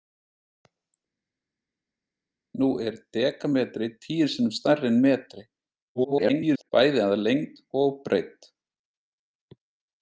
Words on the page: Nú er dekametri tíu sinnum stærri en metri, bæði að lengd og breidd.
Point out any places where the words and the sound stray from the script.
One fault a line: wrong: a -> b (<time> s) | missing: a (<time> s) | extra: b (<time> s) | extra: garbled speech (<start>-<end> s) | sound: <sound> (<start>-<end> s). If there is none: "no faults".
extra: garbled speech (5.9-6.7 s)